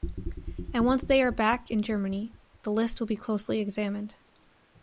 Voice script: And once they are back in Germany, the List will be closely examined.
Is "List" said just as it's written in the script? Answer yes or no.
yes